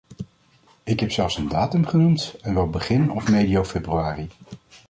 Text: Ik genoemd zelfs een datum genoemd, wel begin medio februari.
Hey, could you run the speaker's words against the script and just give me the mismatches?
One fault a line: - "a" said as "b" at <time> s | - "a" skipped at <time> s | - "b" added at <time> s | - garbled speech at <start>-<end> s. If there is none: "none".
- "genoemd" said as "heb" at 1.0 s
- "en" added at 2.4 s
- "of" added at 3.1 s